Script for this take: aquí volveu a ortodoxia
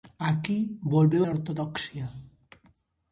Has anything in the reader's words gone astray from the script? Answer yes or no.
no